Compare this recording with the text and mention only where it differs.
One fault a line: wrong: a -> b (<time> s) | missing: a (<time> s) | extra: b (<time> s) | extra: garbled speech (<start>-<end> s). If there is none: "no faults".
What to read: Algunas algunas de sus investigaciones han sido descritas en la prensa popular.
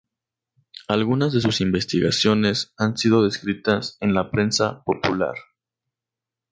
missing: algunas (1.3 s)